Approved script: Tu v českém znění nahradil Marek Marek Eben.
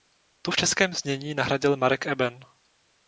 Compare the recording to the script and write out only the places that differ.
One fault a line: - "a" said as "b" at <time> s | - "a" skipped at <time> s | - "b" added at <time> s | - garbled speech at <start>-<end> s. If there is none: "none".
- "Marek" skipped at 2.1 s